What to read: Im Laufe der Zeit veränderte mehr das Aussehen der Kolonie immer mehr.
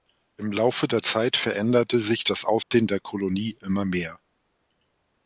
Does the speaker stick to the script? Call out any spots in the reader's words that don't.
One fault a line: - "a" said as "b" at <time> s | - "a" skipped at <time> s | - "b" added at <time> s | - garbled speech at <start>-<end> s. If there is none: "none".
- "mehr" said as "sich" at 2.0 s